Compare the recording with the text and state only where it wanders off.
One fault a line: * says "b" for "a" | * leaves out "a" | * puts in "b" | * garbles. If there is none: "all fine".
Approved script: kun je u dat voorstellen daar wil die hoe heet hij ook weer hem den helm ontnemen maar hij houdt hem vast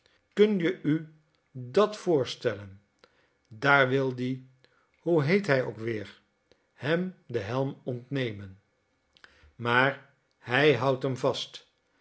all fine